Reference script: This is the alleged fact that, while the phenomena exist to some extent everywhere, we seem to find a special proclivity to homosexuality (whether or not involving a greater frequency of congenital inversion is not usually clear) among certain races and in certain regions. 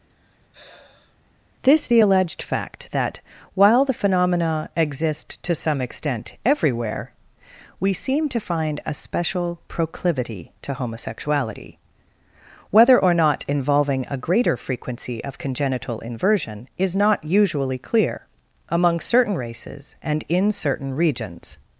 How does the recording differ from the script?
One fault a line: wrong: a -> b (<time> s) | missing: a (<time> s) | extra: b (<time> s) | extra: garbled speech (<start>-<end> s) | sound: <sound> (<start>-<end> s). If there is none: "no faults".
sound: sigh (0.1-1.2 s)
missing: is (1.9 s)